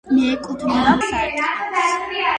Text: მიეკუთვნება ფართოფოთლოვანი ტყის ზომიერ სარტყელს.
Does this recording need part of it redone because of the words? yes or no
yes